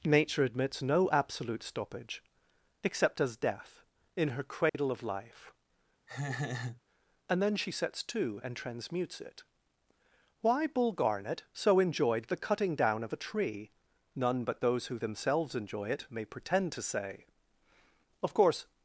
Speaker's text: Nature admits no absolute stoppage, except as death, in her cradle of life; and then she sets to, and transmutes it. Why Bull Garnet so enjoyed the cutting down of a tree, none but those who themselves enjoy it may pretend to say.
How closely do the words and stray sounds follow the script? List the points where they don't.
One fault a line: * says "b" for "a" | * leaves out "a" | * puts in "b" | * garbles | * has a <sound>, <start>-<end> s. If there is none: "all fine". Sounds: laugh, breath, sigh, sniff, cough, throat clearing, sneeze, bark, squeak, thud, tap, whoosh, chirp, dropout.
* has a dropout, 4.7-4.7 s
* has a laugh, 6.1-6.8 s
* puts in "Of course"